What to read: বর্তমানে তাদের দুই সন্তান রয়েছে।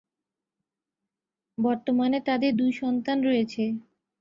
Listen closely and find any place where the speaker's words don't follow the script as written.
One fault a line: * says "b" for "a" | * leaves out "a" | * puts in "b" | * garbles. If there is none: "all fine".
all fine